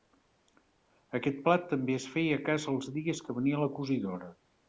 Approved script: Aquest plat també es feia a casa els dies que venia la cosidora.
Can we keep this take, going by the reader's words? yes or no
yes